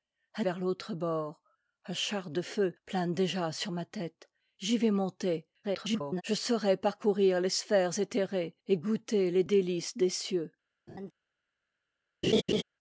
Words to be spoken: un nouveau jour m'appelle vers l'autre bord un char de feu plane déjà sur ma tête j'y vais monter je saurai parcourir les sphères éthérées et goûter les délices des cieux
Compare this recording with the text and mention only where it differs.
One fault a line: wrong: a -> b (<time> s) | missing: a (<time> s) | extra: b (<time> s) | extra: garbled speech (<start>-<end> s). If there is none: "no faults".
missing: nouveau jour m'appelle (0.5 s)
extra: garbled speech (5.6-6.2 s)